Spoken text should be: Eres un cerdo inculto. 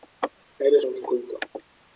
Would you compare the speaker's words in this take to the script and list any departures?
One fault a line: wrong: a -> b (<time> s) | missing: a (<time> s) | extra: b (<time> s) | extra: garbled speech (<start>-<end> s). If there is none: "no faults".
missing: cerdo (0.9 s)